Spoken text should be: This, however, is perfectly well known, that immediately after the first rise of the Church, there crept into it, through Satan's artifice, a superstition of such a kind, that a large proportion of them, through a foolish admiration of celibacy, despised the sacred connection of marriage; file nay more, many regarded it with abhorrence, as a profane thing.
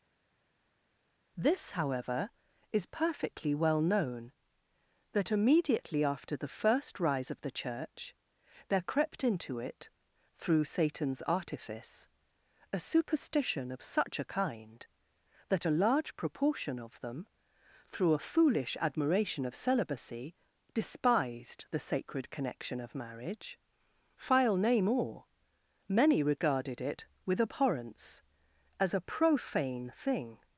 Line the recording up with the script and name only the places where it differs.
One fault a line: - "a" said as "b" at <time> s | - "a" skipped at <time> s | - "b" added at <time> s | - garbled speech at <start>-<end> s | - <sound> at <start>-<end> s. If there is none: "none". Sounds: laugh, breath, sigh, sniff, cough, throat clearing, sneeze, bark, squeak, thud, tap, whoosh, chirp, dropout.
none